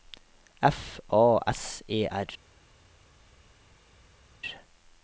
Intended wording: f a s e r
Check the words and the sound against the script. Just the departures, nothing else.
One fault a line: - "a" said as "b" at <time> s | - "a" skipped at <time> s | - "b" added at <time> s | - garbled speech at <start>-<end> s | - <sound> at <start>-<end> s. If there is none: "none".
none